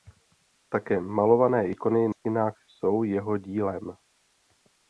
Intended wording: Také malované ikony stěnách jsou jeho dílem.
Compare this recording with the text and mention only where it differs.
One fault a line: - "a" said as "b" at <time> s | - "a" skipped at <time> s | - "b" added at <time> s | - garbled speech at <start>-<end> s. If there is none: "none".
none